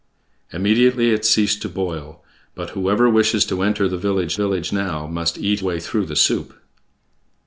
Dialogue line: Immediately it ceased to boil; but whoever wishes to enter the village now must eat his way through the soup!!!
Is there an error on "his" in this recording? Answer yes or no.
yes